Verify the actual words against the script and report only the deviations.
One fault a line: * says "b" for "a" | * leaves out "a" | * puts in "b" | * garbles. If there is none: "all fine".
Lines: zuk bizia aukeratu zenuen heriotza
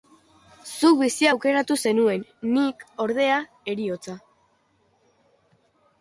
* puts in "nik ordea"